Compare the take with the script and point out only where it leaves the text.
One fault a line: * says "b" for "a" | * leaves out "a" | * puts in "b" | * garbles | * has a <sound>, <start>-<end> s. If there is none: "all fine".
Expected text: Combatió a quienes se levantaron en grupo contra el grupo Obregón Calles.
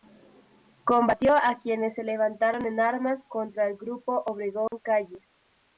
* says "armas" for "grupo"
* has a dropout, 4.7-4.7 s